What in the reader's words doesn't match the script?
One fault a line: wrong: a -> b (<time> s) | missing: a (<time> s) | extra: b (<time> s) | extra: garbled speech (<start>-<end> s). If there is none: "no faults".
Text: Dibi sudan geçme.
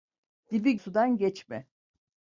no faults